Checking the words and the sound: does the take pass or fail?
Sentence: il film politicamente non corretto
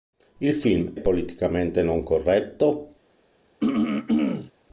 fail